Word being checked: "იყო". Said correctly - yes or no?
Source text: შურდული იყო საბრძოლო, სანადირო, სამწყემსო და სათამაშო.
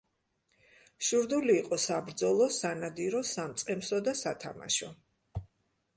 yes